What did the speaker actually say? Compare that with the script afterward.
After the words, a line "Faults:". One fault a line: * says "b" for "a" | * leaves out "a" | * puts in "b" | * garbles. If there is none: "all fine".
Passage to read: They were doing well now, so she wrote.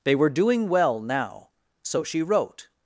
They were doing well now, so she wrote.
Faults:
all fine